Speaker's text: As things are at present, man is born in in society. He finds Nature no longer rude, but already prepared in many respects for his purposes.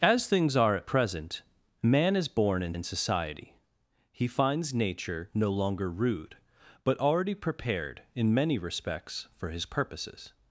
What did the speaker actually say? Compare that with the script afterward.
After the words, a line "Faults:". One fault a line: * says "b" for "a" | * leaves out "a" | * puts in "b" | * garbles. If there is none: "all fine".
As things are at present, man is born in in society. He finds Nature no longer rude, but already prepared in many respects for his purposes.
Faults:
all fine